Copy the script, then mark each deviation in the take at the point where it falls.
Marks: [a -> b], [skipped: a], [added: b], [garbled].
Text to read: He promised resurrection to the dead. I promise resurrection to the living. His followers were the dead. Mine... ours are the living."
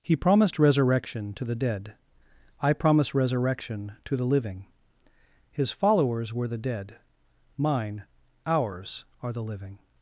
He promised resurrection to the dead. I promise resurrection to the living. His followers were the dead. Mine... ours are the living."